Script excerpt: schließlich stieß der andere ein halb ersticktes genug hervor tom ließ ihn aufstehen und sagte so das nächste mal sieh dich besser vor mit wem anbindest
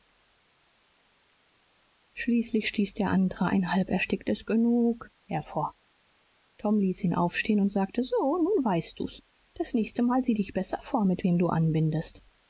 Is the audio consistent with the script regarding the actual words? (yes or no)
no